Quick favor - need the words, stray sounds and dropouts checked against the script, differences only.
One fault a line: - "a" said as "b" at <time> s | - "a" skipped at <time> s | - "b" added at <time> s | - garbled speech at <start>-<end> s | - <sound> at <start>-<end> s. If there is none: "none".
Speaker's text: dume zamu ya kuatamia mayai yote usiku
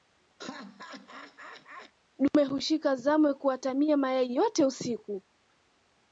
- laugh at 0.4-1.9 s
- "hushika" added at 2.4 s